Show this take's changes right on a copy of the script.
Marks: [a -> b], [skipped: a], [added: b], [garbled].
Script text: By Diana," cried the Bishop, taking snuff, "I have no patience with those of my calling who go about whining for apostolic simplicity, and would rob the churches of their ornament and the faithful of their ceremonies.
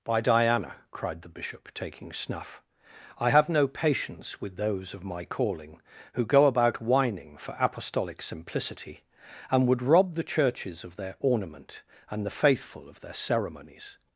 By Diana," cried the Bishop, taking snuff, "I have no patience with those of my calling who go about whining for apostolic simplicity, and would rob the churches of their ornament and the faithful of their ceremonies.